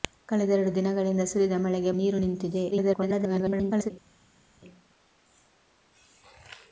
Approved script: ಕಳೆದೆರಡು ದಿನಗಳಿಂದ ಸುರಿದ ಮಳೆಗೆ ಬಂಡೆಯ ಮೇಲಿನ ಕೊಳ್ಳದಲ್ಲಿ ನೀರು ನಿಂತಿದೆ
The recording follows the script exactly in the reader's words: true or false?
false